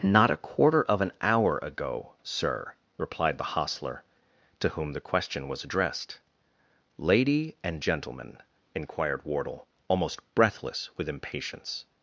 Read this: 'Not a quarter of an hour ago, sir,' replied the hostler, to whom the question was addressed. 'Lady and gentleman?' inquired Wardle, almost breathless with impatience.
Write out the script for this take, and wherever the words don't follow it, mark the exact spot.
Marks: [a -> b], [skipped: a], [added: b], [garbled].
'Not a quarter of an hour ago, sir,' replied the hostler, to whom the question was addressed. 'Lady and gentleman?' inquired Wardle, almost breathless with impatience.